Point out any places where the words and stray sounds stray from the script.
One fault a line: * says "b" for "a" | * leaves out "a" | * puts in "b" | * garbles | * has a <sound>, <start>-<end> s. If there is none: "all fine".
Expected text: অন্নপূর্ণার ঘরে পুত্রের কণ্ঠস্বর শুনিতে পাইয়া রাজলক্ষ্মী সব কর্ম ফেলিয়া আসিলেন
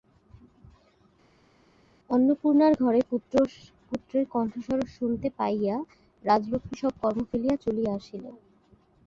* puts in "চলিয়া"